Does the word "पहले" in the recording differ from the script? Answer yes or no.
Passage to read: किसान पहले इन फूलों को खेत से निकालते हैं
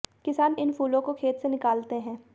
yes